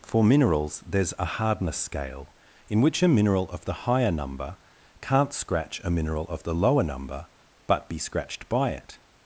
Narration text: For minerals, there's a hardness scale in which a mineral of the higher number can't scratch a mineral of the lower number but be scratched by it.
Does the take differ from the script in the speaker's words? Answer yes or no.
no